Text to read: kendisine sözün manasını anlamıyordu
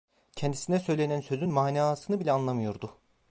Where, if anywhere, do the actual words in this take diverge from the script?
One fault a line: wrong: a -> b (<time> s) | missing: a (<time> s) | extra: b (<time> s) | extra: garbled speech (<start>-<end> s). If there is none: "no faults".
extra: söylenen (0.8 s)
extra: bile (2.2 s)